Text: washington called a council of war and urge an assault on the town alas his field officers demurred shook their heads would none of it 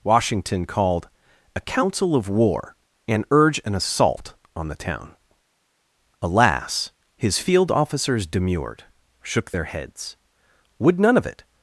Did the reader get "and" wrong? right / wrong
right